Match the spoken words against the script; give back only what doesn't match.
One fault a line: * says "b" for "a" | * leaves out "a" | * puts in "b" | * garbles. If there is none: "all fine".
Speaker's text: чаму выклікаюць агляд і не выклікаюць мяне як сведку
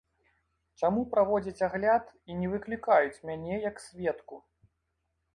* says "праводзяць" for "выклікаюць"